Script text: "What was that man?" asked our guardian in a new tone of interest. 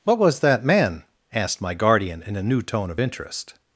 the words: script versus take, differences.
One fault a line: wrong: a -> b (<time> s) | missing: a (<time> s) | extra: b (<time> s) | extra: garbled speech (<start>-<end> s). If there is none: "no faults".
wrong: our -> my (1.6 s)